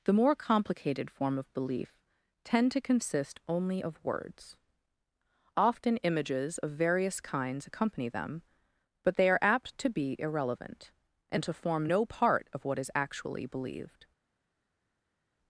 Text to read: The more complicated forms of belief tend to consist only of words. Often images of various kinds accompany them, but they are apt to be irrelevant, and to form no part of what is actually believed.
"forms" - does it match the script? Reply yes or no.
no